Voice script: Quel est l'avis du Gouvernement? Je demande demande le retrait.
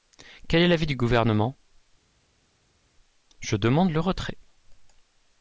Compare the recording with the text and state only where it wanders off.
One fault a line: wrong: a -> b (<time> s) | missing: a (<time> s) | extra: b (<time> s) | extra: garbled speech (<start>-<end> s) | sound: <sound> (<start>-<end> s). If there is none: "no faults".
missing: demande (3.9 s)